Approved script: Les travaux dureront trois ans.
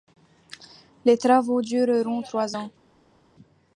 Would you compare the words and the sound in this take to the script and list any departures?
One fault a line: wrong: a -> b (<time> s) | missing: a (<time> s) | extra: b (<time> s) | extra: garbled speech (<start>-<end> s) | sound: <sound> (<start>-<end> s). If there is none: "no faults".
no faults